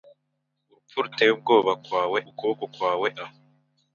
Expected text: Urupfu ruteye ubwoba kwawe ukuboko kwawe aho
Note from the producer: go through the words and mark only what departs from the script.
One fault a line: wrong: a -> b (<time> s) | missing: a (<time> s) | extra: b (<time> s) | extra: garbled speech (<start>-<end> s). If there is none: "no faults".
no faults